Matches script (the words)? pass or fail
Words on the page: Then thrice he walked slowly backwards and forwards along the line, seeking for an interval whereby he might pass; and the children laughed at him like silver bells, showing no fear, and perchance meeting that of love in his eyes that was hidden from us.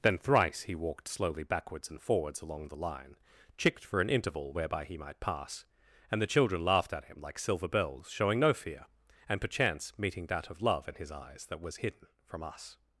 fail